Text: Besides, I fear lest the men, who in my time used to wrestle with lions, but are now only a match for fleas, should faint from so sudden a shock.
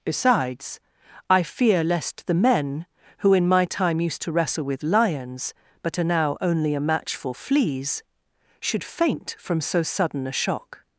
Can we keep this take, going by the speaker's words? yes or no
yes